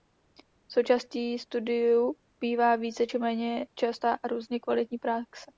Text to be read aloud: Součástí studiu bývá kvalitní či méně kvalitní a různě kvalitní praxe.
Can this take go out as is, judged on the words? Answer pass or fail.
fail